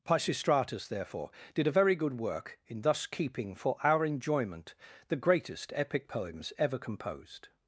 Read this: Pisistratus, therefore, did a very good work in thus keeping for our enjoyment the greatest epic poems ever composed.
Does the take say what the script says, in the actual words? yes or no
yes